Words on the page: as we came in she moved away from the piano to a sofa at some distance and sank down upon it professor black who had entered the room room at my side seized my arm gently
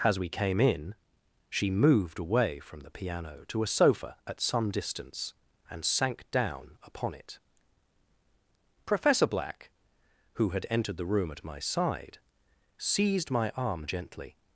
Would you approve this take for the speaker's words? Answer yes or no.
no